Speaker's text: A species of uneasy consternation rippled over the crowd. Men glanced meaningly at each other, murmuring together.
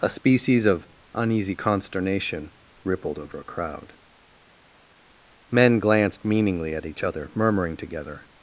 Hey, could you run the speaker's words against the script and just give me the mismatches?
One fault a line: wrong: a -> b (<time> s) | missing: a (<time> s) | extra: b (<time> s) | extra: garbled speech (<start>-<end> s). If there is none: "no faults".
wrong: the -> a (3.4 s)